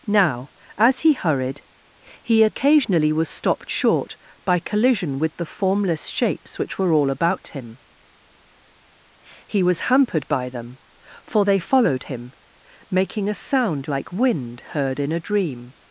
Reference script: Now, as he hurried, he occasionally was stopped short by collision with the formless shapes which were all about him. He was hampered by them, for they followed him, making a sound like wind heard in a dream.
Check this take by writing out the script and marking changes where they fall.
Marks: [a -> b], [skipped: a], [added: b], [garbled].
Now, as he hurried, he occasionally was stopped short by collision with the formless shapes which were all about him. He was hampered by them, for they followed him, making a sound like wind heard in a dream.